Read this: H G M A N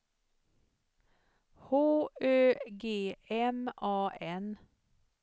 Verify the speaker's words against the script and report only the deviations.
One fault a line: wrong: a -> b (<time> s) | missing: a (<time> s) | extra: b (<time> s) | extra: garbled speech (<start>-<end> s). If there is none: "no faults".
extra: Ö (2.2 s)